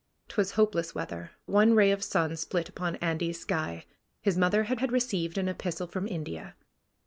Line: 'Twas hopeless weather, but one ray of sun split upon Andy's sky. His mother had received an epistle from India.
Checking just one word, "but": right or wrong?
wrong